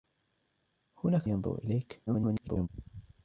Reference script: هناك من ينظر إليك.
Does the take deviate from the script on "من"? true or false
true